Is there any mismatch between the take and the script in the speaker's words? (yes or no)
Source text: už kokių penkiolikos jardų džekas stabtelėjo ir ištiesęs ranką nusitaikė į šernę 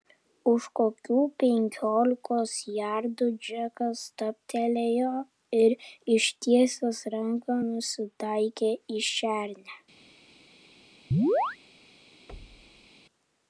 no